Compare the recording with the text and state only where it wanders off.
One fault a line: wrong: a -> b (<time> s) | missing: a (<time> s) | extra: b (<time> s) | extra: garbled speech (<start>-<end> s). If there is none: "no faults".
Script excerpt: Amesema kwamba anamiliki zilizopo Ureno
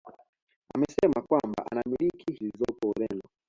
no faults